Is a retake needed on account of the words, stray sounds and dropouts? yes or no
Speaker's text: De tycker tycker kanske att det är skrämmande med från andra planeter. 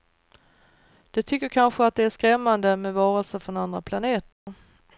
yes